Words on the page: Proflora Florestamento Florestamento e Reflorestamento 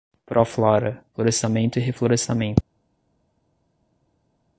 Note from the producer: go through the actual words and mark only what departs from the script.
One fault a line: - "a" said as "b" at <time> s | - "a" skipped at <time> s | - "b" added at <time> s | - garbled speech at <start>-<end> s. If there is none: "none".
- "Florestamento" skipped at 1.8 s